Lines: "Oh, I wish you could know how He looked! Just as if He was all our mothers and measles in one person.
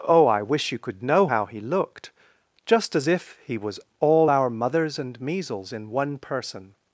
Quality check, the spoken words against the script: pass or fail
pass